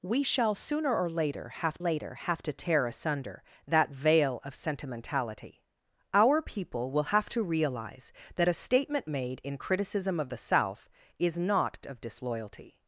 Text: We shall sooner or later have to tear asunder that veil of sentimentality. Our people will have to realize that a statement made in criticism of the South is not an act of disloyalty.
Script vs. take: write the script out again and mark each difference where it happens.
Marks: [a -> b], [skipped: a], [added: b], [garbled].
We shall sooner or later have [added: later have] to tear asunder that veil of sentimentality. Our people will have to realize that a statement made in criticism of the South is not [skipped: an act] of disloyalty.